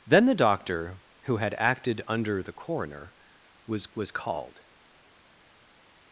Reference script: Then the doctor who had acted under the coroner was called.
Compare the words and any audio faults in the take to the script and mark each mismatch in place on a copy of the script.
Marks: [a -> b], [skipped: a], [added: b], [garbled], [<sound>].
Then the doctor who had acted under the coroner was [added: was] called.